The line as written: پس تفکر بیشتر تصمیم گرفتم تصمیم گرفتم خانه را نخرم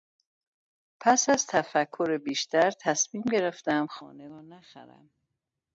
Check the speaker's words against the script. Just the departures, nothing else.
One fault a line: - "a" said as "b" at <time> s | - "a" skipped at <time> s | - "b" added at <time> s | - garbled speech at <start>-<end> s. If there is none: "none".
- "از" added at 1.3 s
- "تصمیم گرفتم" skipped at 3.9 s